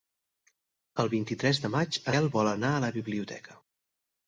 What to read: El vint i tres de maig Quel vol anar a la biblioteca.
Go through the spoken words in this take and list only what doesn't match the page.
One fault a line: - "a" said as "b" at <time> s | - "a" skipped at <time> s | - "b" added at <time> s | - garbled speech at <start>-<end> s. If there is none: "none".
none